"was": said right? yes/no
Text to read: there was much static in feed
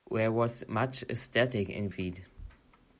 yes